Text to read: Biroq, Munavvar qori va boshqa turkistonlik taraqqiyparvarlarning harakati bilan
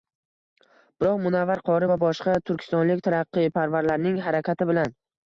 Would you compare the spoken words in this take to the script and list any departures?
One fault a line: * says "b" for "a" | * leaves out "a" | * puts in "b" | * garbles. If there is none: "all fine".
all fine